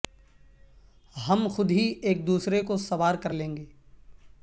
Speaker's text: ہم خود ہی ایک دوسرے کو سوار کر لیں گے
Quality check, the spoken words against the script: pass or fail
pass